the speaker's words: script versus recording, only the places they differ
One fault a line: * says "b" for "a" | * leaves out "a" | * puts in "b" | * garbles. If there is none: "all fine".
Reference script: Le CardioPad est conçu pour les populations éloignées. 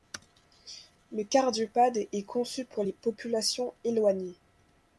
all fine